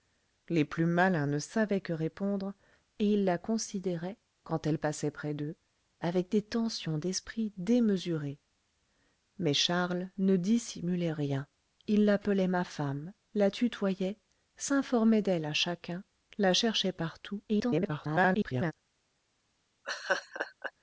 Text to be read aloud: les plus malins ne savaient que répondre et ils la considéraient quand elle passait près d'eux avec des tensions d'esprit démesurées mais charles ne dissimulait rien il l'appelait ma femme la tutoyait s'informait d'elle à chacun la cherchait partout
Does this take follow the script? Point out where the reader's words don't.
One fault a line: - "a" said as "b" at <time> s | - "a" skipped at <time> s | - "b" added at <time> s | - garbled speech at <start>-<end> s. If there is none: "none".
- garbled speech at 17.5-18.7 s